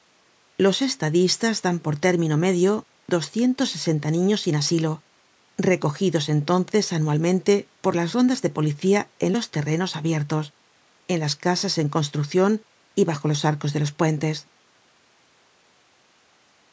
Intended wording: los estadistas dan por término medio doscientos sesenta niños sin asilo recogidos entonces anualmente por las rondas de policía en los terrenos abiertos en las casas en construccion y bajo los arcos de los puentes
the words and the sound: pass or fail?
pass